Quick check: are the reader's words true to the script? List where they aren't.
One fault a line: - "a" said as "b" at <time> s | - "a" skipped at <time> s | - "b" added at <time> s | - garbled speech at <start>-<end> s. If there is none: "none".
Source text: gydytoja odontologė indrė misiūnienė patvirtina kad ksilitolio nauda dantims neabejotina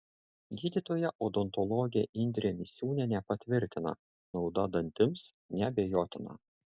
- "kad ksilitolio" skipped at 4.0 s